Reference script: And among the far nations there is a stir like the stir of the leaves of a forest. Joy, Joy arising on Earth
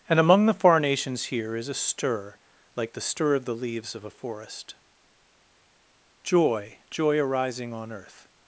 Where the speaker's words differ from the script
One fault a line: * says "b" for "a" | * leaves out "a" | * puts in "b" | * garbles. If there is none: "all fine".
* says "here" for "there"